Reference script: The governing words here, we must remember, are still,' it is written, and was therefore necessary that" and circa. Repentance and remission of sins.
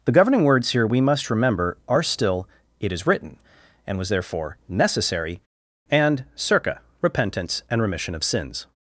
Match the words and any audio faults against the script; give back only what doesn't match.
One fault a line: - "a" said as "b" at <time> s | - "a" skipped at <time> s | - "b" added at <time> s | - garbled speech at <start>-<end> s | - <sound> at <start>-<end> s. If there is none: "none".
- "that" skipped at 5.4 s